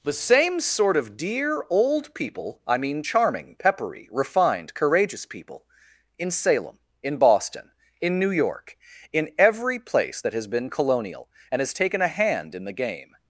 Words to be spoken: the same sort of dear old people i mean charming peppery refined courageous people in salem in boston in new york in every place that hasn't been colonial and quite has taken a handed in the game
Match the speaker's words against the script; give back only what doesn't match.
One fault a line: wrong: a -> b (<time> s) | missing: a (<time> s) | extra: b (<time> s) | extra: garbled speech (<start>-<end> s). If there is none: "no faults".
wrong: hasn't -> has (10.3 s)
missing: quite (11.6 s)
wrong: handed -> hand (12.1 s)